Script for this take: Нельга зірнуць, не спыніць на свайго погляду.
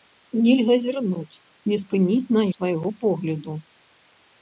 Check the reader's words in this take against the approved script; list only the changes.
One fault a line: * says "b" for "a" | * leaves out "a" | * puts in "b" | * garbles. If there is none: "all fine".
all fine